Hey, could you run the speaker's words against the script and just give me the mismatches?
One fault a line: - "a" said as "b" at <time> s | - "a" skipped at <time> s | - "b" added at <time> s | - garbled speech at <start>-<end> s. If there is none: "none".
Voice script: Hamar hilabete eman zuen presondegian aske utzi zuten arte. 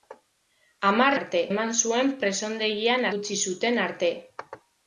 - "hilabete" said as "arte" at 1.2 s
- "aske" skipped at 3.1 s